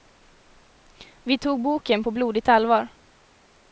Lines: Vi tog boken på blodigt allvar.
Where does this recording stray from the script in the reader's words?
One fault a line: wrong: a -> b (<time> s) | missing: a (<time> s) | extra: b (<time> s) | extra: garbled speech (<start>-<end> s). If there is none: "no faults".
no faults